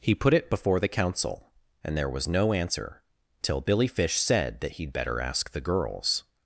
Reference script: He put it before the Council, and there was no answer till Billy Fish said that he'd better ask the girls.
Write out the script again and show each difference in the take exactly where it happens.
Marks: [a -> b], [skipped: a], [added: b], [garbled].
He put it before the Council, and there was no answer till Billy Fish said that he'd better ask the girls.